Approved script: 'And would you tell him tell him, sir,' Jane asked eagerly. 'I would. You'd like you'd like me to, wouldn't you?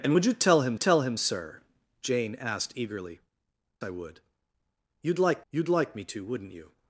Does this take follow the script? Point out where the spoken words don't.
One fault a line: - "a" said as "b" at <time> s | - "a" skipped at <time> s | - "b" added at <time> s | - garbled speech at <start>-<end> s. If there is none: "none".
none